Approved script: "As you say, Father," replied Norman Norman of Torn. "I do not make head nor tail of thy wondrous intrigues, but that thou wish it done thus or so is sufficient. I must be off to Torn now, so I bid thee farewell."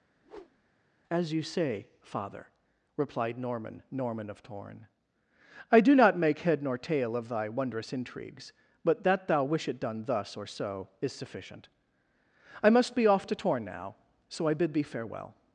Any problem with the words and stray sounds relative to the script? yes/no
yes